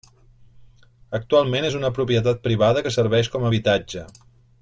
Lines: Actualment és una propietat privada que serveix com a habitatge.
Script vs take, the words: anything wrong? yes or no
no